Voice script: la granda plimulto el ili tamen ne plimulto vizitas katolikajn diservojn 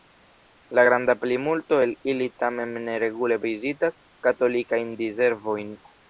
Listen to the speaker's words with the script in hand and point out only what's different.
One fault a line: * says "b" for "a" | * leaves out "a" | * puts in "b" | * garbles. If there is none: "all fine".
* says "regule" for "plimulto"